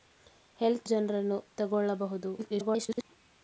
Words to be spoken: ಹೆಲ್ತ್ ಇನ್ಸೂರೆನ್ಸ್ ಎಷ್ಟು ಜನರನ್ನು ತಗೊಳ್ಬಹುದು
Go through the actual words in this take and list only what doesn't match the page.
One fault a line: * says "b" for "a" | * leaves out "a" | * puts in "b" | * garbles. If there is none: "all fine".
* leaves out "ಇನ್ಸೂರೆನ್ಸ್ ಎಷ್ಟು"
* garbles